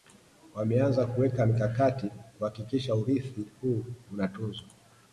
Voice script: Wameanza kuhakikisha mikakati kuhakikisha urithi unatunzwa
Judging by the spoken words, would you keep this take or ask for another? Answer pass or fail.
fail